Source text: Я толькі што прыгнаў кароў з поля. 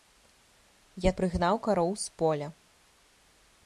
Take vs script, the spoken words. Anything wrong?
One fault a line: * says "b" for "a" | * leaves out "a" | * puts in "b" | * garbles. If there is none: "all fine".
* leaves out "толькі што"